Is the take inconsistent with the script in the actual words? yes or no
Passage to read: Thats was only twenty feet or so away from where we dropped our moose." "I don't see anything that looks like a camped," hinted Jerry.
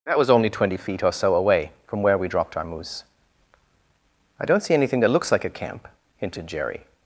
yes